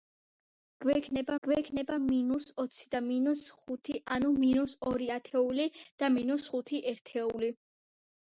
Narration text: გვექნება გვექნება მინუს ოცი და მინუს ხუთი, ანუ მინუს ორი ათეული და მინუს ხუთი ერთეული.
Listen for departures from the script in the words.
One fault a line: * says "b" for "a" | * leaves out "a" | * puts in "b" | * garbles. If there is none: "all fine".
all fine